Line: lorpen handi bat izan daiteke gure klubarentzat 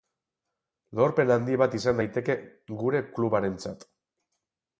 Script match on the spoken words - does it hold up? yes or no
yes